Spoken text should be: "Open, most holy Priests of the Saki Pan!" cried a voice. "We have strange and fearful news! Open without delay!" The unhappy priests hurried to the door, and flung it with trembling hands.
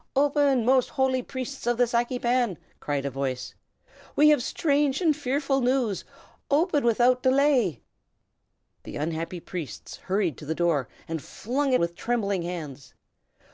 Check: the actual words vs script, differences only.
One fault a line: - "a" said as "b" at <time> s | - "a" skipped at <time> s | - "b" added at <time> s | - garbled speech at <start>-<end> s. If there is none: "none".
none